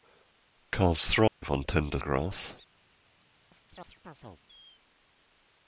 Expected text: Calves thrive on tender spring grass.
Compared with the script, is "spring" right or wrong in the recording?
wrong